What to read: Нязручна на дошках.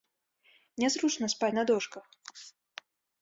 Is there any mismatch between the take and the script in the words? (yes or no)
yes